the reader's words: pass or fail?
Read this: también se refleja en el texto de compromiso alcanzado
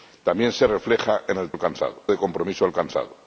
fail